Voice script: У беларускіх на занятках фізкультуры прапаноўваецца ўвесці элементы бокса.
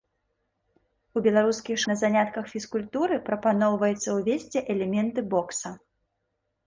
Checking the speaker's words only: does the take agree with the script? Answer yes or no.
yes